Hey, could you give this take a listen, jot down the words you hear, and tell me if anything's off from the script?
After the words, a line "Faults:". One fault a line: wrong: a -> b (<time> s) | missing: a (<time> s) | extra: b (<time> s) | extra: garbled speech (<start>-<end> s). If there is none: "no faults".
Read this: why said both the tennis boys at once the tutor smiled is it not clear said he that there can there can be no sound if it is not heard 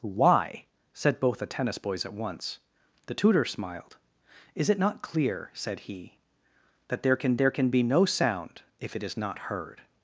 why said both the tennis boys at once the tutor smiled is it not clear said he that there can there can be no sound if it is not heard
Faults:
no faults